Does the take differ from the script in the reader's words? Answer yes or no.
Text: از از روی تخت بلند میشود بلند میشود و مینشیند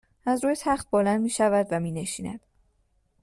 yes